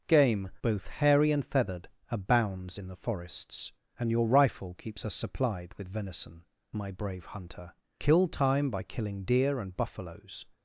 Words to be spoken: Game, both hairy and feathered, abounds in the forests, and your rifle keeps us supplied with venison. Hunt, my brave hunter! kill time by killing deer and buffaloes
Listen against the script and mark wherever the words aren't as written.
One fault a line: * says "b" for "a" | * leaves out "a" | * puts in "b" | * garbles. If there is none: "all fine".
* leaves out "Hunt"